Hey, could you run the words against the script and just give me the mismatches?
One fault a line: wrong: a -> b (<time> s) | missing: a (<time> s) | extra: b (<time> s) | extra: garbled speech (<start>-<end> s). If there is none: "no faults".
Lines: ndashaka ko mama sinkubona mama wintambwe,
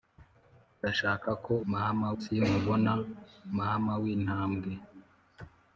no faults